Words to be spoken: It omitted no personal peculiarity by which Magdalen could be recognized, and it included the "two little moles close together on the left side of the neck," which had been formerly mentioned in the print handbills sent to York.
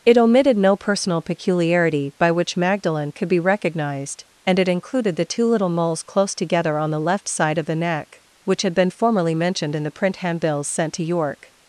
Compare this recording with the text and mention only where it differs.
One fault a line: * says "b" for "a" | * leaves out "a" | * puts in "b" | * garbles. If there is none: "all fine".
all fine